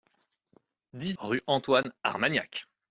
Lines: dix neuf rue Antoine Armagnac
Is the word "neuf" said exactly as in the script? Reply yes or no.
no